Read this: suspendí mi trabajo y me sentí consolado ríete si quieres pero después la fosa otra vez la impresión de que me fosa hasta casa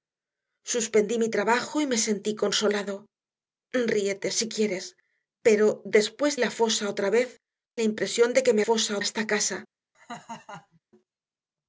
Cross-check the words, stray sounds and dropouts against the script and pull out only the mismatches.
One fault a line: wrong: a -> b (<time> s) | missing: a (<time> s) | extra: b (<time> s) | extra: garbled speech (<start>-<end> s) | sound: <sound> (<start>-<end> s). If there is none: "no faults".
sound: laugh (9.9-10.8 s)